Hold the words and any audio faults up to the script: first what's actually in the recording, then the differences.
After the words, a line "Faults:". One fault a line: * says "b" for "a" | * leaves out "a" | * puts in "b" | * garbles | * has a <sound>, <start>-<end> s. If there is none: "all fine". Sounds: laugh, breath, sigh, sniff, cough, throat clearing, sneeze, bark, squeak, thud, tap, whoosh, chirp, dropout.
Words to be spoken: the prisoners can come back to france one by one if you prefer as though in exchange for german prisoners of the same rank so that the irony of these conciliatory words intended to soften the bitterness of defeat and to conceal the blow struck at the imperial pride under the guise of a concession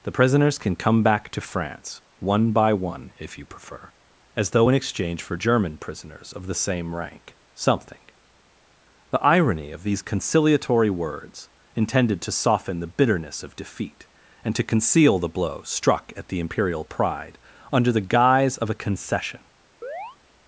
the prisoners can come back to france one by one if you prefer as though in exchange for german prisoners of the same rank something the irony of these conciliatory words intended to soften the bitterness of defeat and to conceal the blow struck at the imperial pride under the guise of a concession
Faults:
* says "something" for "so that"
* has a chirp, 19.8-20.2 s